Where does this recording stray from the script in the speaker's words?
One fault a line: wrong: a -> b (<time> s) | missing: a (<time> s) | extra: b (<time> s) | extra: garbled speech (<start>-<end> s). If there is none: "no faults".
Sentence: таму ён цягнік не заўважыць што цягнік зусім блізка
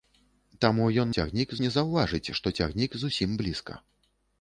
no faults